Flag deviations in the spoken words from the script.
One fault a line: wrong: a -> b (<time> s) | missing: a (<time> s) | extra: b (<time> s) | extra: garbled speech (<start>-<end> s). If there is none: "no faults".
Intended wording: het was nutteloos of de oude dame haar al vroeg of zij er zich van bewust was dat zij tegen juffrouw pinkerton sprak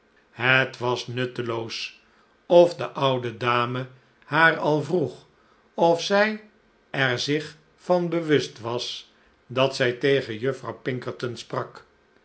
no faults